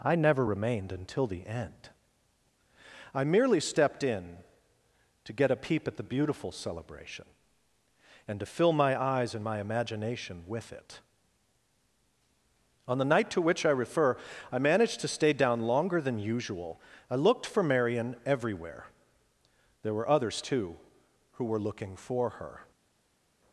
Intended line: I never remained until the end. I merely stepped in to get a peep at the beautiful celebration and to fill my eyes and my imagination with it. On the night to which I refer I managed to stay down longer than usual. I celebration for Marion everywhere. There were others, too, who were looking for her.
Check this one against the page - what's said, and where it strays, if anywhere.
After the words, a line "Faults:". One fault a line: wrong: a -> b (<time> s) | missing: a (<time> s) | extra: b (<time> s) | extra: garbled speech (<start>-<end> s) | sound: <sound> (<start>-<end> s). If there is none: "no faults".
I never remained until the end. I merely stepped in to get a peep at the beautiful celebration and to fill my eyes and my imagination with it. On the night to which I refer I managed to stay down longer than usual. I looked for Marion everywhere. There were others, too, who were looking for her.
Faults:
wrong: celebration -> looked (17.1 s)